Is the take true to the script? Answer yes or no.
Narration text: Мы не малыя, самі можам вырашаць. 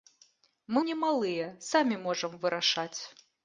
yes